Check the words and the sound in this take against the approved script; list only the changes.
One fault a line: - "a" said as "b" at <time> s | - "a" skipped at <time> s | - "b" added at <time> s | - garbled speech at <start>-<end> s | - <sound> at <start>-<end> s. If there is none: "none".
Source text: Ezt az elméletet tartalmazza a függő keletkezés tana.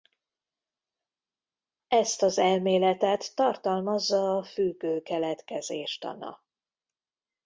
none